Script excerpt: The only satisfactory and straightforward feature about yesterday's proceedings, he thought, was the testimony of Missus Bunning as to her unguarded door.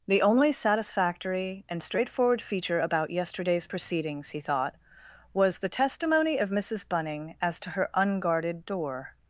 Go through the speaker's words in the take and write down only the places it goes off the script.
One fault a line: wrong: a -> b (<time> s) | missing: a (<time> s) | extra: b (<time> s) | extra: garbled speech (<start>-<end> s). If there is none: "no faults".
no faults